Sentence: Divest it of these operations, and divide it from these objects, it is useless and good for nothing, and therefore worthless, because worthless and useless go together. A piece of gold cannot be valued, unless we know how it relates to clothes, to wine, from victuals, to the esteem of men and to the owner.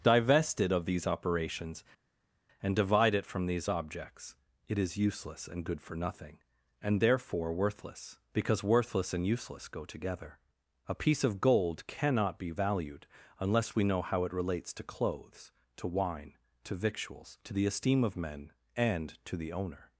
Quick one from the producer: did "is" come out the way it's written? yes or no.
yes